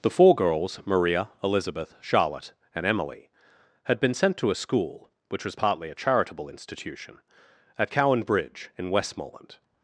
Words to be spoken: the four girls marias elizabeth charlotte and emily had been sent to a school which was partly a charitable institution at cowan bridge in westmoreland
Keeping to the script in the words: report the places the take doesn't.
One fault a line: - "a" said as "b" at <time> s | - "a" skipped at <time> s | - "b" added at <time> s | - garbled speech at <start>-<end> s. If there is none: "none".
- "marias" said as "maria" at 0.8 s